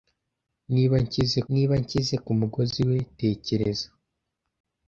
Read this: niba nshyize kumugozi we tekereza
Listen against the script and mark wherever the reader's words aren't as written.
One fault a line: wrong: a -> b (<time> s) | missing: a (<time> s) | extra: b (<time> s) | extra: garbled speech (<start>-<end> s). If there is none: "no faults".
extra: niba nshyize (1.5 s)